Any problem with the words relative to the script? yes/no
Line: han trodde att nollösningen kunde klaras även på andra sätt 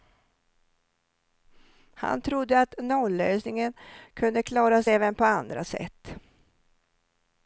no